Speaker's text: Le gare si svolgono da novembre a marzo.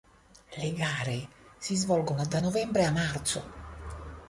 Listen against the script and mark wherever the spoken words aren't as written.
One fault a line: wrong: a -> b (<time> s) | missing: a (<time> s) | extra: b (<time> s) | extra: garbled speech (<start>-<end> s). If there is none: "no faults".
no faults